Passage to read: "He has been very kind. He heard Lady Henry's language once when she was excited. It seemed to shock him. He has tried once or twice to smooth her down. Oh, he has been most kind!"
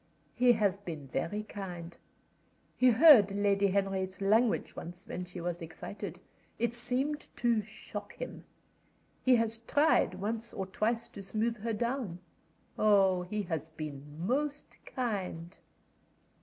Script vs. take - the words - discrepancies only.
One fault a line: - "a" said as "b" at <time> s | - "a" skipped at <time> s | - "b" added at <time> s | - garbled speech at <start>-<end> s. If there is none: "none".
none